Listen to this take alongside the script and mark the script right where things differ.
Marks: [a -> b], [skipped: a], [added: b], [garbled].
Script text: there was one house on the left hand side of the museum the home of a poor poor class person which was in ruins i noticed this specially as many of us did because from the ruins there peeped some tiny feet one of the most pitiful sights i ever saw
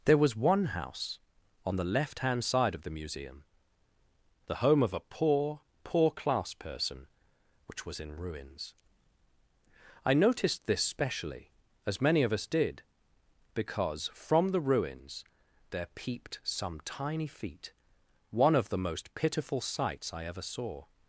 there was one house on the left hand side of the museum the home of a poor poor class person which was in ruins i noticed this specially as many of us did because from the ruins there peeped some tiny feet one of the most pitiful sights i ever saw